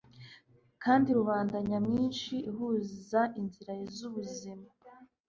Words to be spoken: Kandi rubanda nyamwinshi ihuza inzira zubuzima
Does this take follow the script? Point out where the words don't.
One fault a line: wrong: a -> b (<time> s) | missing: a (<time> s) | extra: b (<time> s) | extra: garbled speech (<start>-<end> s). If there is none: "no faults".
no faults